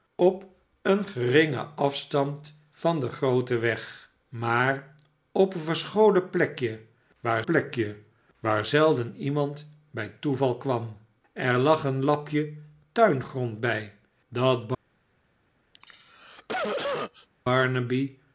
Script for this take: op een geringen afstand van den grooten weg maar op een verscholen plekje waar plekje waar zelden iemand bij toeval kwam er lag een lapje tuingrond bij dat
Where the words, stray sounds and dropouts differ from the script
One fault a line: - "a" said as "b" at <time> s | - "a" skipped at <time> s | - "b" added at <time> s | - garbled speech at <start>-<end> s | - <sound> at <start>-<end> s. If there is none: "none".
- cough at 15.7-17.3 s